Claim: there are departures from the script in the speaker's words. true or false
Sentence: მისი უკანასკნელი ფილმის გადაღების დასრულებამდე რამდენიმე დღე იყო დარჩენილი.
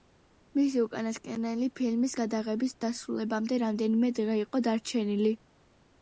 false